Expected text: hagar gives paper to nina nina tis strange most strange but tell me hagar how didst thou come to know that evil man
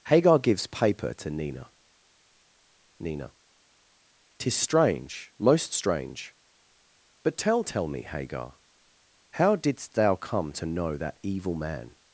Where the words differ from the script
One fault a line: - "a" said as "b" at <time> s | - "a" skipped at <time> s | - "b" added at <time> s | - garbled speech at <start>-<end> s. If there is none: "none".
- "tell" added at 7.6 s